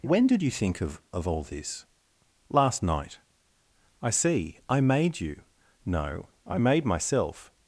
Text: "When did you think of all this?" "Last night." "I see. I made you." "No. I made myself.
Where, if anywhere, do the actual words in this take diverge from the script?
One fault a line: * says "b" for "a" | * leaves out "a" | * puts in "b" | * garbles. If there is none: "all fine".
* puts in "of"